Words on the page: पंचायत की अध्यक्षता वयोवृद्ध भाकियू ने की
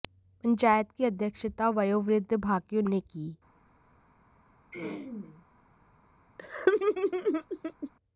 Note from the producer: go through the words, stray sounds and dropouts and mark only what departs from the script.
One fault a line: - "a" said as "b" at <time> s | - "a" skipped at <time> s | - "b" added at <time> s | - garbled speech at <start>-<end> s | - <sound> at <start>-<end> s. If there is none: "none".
- throat clearing at 4.7-5.5 s
- laugh at 6.4-7.9 s